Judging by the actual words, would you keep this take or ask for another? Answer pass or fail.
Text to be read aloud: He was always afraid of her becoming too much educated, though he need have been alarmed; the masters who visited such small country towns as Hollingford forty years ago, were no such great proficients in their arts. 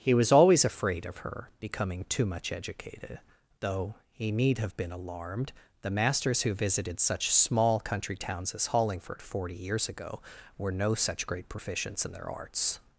pass